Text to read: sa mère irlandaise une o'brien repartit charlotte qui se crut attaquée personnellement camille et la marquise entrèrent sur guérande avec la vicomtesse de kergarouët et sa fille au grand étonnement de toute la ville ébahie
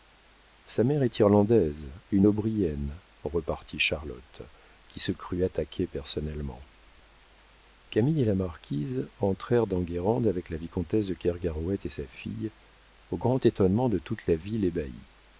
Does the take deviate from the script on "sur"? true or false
true